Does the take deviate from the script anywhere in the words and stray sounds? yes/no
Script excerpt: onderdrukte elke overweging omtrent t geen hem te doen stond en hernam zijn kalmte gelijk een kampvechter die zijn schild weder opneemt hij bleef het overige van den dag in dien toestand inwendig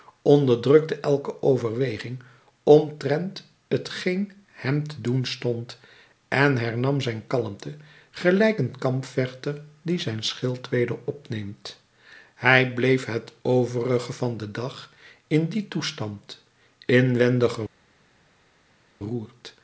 no